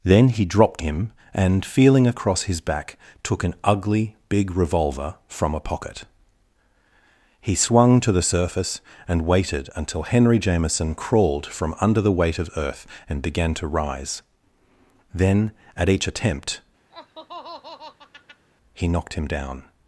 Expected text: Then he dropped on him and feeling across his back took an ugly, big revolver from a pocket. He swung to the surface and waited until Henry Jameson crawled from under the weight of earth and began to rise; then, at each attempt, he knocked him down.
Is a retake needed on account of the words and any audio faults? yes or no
yes